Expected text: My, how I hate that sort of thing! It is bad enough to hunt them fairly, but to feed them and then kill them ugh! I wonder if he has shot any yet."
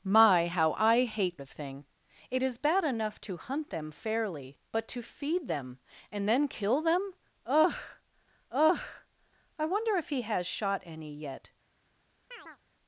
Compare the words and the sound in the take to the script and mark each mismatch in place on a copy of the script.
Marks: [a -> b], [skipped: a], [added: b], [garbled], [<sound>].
My, how I hate [skipped: that sort] of thing! It is bad enough to hunt them fairly, but to feed them and then kill them ugh! [added: ugh] I wonder if he has shot any yet." [chirp]